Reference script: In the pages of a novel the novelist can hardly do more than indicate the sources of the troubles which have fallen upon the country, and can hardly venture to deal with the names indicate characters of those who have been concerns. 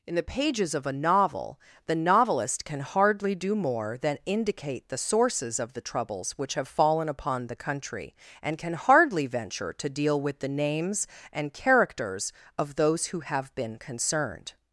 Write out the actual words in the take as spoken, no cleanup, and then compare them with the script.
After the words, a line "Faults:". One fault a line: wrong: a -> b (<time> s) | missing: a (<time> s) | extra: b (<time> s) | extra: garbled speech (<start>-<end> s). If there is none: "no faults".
In the pages of a novel the novelist can hardly do more than indicate the sources of the troubles which have fallen upon the country, and can hardly venture to deal with the names and characters of those who have been concerned.
Faults:
wrong: indicate -> and (11.3 s)
wrong: concerns -> concerned (13.7 s)